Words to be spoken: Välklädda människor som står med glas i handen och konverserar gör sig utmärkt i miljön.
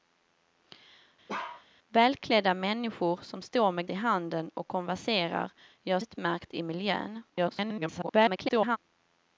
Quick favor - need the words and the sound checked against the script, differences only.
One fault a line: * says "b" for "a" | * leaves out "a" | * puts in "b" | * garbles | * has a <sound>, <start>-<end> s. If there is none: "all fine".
* has a bark, 1.3-1.7 s
* leaves out "glas"
* leaves out "sig"
* garbles